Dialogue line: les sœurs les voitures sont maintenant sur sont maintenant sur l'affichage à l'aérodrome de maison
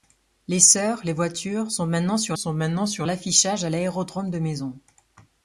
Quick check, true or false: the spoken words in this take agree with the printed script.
true